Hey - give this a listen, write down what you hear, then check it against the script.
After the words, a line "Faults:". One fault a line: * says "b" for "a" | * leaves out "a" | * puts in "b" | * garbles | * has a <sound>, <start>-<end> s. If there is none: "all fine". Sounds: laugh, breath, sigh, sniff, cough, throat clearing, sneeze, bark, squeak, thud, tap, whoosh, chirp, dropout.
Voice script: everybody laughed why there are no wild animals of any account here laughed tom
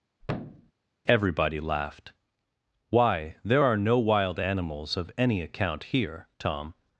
everybody laughed why there are no wild animals of any account here tom
Faults:
* has a thud, 0.2-0.7 s
* leaves out "laughed"